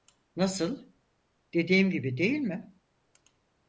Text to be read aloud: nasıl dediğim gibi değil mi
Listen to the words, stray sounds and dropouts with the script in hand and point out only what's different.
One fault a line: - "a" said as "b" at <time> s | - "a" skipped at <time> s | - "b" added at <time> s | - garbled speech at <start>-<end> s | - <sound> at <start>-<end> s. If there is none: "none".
none